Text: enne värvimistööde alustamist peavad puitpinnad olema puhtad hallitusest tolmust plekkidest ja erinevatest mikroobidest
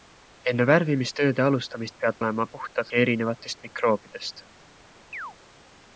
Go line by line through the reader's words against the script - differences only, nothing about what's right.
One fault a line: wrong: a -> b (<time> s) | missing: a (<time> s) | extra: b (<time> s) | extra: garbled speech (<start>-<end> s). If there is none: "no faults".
missing: puitpinnad (2.2 s)
missing: hallitusest tolmust plekkidest (2.9 s)